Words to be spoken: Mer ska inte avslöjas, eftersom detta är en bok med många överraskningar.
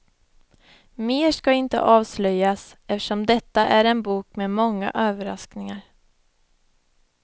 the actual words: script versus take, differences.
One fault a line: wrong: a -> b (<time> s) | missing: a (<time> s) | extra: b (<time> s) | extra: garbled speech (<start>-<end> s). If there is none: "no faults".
no faults